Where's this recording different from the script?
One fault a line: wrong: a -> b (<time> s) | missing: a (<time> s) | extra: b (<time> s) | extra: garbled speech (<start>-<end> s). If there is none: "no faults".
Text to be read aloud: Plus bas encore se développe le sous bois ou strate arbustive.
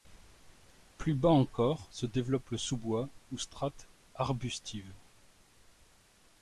no faults